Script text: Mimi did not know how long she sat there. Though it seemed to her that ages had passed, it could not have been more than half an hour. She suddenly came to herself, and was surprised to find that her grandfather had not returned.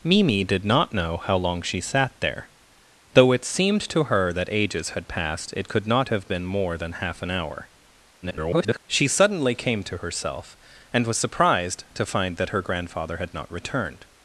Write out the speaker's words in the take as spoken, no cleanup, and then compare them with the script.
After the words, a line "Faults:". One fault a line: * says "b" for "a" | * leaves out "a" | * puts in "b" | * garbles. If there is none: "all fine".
Mimi did not know how long she sat there. Though it seemed to her that ages had passed, it could not have been more than half an hour. [garbled] She suddenly came to herself, and was surprised to find that her grandfather had not returned.
Faults:
* garbles